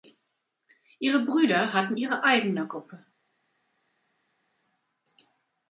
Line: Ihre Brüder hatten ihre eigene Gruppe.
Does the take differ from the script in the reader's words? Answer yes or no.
no